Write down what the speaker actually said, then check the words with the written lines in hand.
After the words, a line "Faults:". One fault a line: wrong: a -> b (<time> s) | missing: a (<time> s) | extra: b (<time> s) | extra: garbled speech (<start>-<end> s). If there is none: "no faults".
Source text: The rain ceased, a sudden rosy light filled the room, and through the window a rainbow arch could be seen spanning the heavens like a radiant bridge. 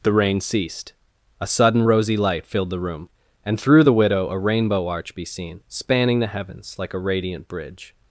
The rain ceased, a sudden rosy light filled the room, and through the widow a rainbow arch be seen spanning the heavens like a radiant bridge.
Faults:
wrong: window -> widow (3.9 s)
missing: could (5.2 s)